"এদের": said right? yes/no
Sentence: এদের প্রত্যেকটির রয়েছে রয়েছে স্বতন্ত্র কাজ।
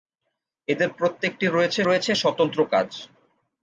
yes